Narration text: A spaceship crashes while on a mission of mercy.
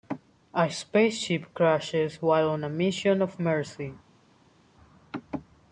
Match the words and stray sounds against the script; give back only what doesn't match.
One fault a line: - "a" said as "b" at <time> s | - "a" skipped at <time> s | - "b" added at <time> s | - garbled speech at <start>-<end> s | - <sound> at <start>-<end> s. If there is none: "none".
none